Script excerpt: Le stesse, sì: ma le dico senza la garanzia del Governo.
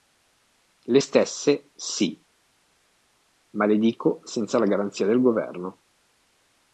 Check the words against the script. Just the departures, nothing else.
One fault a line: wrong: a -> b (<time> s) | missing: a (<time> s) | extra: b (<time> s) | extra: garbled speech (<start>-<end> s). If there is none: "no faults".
no faults